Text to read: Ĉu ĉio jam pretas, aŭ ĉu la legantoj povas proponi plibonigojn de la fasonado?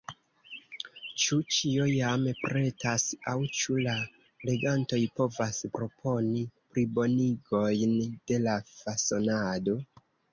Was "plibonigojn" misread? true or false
false